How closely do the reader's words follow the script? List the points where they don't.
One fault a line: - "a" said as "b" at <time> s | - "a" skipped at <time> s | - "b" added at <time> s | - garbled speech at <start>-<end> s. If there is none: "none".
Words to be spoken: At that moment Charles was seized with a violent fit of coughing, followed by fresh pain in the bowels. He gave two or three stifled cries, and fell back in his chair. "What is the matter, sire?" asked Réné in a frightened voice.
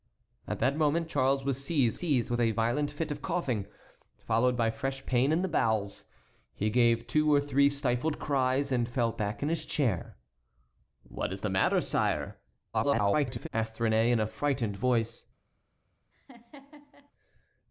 - "seized" added at 2.0 s
- garbled speech at 12.7-13.5 s